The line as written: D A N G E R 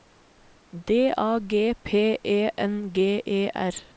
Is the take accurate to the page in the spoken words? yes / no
no